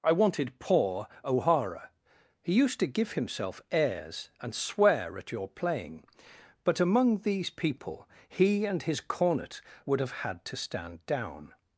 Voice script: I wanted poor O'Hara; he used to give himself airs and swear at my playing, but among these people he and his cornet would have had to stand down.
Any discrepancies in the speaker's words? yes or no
yes